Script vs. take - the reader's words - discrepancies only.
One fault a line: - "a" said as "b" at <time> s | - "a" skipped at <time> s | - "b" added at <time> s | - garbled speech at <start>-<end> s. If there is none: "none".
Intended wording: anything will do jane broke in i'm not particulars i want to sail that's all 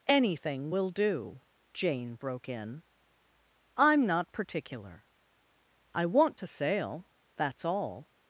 - "particulars" said as "particular" at 4.3 s